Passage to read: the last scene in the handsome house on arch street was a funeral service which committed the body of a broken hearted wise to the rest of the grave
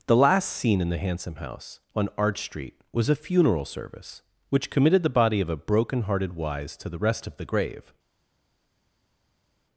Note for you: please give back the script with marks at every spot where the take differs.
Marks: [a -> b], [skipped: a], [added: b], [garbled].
the last scene in the handsome house on arch street was a funeral service which committed the body of a broken hearted wise to the rest of the grave